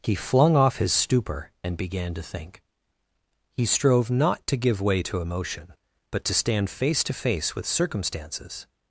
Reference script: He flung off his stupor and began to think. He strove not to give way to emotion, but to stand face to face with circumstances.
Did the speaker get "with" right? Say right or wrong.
right